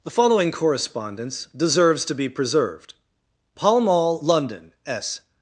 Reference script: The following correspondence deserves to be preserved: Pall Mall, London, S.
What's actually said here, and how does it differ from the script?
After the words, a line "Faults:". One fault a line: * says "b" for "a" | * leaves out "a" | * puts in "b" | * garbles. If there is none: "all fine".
The following correspondence deserves to be preserved: Pall Mall, London, S.
Faults:
all fine